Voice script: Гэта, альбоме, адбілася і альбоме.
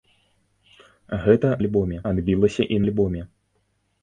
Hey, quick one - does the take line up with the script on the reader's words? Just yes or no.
yes